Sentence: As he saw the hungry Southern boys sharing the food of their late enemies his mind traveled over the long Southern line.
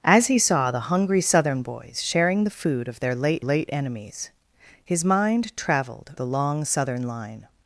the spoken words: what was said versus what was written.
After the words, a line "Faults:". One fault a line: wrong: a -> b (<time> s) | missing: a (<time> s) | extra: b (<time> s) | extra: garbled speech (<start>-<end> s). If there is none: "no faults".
As he saw the hungry Southern boys sharing the food of their late late enemies his mind traveled the long Southern line.
Faults:
extra: late (3.4 s)
missing: over (6.1 s)